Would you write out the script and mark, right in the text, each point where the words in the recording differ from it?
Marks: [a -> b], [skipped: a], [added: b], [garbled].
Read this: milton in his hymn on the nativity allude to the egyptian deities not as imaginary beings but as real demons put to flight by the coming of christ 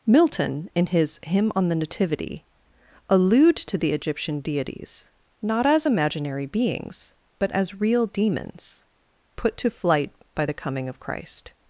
milton in his hymn on the nativity allude to the egyptian deities not as imaginary beings but as real demons put to flight by the coming of christ